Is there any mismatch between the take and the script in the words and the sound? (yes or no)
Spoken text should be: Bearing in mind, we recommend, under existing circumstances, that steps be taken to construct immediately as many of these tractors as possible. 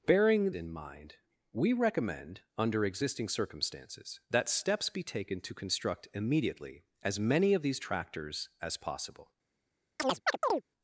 yes